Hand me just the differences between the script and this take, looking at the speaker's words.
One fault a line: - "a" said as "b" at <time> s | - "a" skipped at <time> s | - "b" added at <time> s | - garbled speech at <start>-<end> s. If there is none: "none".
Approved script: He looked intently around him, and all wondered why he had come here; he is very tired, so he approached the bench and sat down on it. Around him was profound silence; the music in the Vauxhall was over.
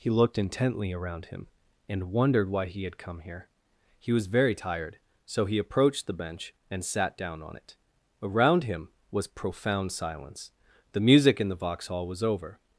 - "all" skipped at 2.1 s
- "is" said as "was" at 4.1 s